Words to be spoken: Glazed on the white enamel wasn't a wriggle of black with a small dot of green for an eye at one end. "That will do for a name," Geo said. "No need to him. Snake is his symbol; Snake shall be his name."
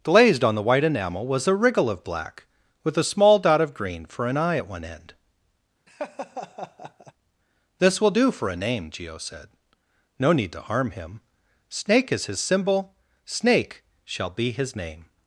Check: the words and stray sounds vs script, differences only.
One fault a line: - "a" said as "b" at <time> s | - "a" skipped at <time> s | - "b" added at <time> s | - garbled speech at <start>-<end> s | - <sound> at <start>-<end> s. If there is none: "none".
- "wasn't" said as "was" at 1.3 s
- laugh at 5.9-7.1 s
- "That" said as "This" at 7.8 s
- "harm" added at 10.6 s